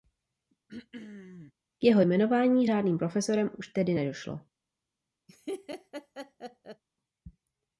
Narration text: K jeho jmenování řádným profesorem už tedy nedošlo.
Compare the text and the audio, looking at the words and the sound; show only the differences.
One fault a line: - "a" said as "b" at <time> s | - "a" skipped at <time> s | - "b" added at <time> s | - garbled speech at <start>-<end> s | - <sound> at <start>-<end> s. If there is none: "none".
- throat clearing at 0.7-1.5 s
- laugh at 5.3-6.8 s